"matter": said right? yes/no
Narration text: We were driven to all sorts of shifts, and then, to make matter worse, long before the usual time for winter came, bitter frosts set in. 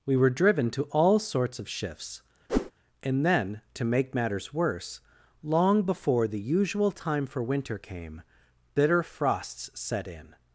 no